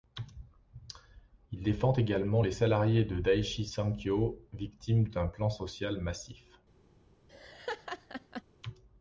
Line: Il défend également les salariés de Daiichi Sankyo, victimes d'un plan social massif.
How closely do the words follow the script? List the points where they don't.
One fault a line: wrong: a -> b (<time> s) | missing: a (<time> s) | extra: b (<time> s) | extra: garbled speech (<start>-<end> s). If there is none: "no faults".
no faults